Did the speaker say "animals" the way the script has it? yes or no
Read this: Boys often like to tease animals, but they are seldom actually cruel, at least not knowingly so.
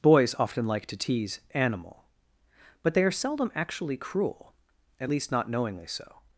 no